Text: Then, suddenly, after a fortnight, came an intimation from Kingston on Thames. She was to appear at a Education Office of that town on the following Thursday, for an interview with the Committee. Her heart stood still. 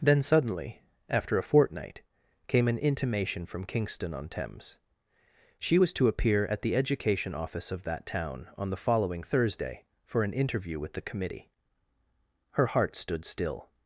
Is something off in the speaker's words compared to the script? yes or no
yes